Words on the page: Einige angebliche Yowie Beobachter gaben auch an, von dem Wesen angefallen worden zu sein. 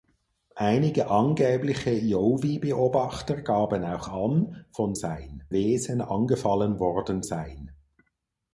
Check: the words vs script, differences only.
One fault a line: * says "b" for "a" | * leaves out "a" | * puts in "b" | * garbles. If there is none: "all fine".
* says "sein" for "dem"
* leaves out "zu"